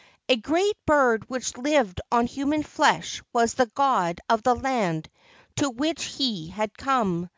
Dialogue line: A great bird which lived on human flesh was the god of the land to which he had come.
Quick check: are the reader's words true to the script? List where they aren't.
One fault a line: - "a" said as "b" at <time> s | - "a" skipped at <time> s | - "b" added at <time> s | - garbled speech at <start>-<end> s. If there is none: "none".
none